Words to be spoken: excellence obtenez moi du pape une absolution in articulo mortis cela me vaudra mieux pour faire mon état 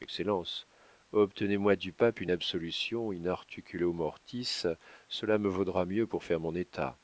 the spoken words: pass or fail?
pass